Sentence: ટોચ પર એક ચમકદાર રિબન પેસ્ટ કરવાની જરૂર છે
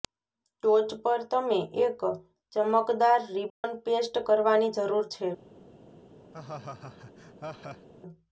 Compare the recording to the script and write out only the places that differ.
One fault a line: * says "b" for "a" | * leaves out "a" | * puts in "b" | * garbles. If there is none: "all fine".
* puts in "તમે"